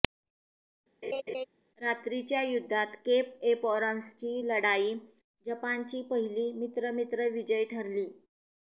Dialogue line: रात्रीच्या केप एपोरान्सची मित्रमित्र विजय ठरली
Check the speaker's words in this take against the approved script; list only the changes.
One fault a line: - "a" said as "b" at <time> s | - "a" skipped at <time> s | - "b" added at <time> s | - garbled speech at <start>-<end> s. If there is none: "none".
- "युद्धात" added at 2.4 s
- "लढाई जपानची पहिली" added at 4.5 s